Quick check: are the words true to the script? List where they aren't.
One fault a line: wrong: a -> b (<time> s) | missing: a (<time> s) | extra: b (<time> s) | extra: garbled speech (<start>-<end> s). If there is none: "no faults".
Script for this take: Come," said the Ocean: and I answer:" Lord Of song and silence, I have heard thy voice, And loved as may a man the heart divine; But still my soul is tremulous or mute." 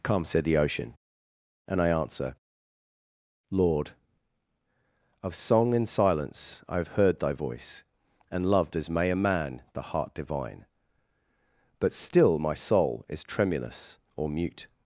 no faults